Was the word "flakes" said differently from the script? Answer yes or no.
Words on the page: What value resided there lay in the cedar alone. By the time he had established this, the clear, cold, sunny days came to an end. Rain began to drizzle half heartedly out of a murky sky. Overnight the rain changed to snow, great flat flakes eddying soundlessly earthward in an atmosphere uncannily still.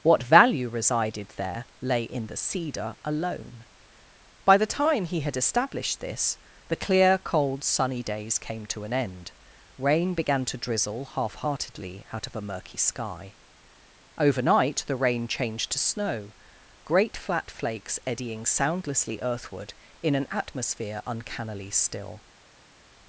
no